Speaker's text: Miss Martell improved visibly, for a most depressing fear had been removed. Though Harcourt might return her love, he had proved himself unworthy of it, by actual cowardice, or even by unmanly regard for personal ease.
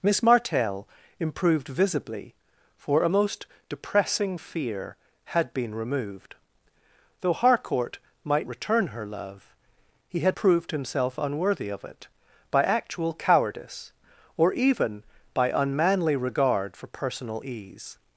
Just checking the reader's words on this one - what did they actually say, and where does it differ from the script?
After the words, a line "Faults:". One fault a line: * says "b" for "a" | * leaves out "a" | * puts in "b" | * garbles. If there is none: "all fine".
Miss Martell improved visibly, for a most depressing fear had been removed. Though Harcourt might return her love, he had proved himself unworthy of it, by actual cowardice, or even by unmanly regard for personal ease.
Faults:
all fine